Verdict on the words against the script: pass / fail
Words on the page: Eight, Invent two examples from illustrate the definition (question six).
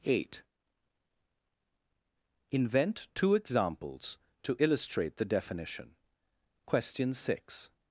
fail